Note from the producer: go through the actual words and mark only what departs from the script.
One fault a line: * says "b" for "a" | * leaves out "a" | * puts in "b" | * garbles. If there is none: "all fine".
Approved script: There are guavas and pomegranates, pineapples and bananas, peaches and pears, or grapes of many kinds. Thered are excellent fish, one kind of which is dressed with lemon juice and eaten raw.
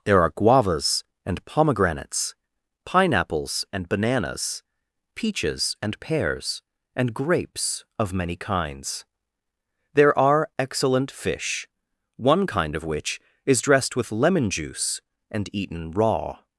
* says "and" for "or"
* says "There" for "Thered"